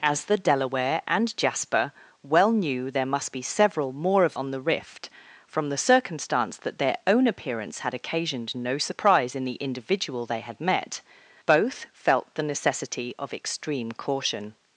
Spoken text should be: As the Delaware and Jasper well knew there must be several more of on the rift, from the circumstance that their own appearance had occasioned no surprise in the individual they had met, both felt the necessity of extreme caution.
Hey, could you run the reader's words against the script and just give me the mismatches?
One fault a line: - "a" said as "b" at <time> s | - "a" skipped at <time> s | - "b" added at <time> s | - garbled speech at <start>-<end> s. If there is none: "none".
none